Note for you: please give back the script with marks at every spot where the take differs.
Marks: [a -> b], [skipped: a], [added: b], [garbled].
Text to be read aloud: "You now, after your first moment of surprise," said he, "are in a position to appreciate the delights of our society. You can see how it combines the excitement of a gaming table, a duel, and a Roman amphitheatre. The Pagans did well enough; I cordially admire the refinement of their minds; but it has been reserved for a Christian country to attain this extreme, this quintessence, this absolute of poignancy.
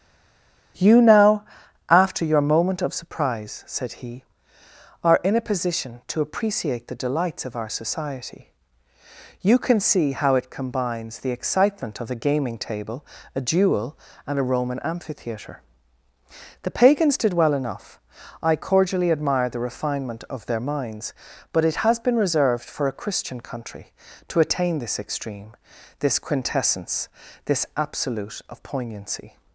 "You now, after your [skipped: first] moment of surprise," said he, "are in a position to appreciate the delights of our society. You can see how it combines the excitement of a gaming table, a duel, and a Roman amphitheatre. The Pagans did well enough; I cordially admire the refinement of their minds; but it has been reserved for a Christian country to attain this extreme, this quintessence, this absolute of poignancy.